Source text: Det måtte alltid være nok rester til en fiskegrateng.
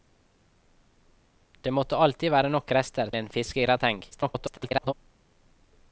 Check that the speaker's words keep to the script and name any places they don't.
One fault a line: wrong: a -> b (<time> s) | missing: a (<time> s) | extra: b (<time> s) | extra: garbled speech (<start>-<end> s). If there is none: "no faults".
missing: til (3.1 s)
extra: garbled speech (4.1-4.9 s)